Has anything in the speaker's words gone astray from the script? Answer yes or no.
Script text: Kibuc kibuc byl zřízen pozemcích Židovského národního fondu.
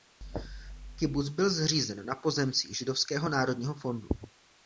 yes